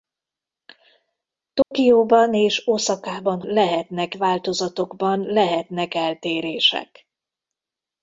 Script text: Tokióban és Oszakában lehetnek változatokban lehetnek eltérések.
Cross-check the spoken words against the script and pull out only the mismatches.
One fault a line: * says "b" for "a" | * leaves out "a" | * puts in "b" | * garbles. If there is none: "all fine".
all fine